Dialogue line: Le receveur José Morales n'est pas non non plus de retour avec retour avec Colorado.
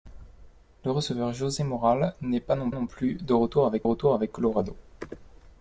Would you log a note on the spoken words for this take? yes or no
no